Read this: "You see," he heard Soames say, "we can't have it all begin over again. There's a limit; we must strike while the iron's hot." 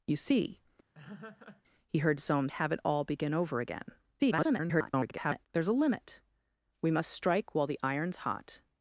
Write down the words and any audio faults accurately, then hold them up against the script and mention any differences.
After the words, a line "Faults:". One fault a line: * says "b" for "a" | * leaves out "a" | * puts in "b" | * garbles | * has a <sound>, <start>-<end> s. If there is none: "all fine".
"You see," he heard Soames have it all begin over again. [garbled] There's a limit; we must strike while the iron's hot."
Faults:
* has a laugh, 0.9-1.6 s
* leaves out "say we can't"
* garbles